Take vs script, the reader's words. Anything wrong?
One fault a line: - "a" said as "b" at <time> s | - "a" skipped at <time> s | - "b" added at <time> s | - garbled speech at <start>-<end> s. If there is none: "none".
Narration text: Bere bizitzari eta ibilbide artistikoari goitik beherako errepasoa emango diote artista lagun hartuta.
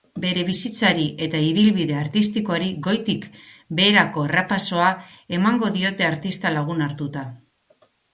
none